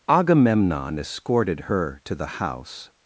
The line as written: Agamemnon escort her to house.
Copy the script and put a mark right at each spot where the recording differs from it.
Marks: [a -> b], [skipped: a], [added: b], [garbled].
Agamemnon [escort -> escorted] her to [added: the] house.